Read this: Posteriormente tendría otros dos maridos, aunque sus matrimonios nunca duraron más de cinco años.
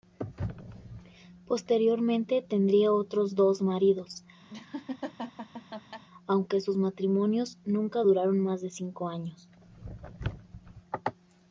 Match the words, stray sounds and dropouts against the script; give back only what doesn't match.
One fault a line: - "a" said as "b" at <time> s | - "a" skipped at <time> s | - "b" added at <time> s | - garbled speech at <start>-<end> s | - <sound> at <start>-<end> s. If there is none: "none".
- laugh at 4.5-6.0 s